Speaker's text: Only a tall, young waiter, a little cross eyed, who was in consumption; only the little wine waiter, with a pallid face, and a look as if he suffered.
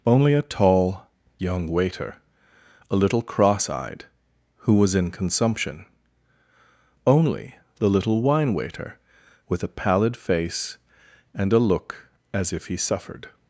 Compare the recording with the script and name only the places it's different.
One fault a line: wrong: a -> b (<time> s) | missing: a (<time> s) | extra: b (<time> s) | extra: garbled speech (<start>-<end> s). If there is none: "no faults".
no faults